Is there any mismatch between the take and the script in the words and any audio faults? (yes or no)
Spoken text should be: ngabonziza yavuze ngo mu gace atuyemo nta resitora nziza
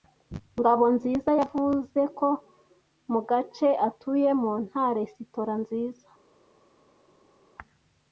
yes